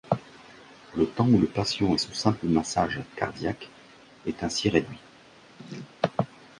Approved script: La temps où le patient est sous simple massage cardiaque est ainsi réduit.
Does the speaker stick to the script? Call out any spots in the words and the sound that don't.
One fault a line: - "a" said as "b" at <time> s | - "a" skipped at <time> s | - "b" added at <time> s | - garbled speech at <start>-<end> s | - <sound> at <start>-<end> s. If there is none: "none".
- "La" said as "Le" at 0.9 s
- laugh at 5.6-6.0 s